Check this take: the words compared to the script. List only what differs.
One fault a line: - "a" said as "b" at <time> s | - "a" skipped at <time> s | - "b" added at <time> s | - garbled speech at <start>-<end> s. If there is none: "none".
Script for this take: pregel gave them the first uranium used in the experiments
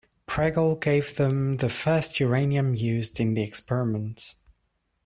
none